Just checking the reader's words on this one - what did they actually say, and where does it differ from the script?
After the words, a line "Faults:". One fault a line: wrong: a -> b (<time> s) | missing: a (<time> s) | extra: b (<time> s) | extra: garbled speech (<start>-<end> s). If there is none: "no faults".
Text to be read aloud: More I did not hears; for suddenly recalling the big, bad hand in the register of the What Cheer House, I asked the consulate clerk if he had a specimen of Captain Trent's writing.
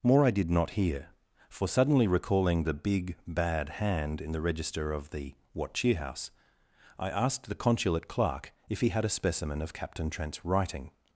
More I did not hear; for suddenly recalling the big, bad hand in the register of the What Cheer House, I asked the consulate clerk if he had a specimen of Captain Trent's writing.
Faults:
wrong: hears -> hear (0.7 s)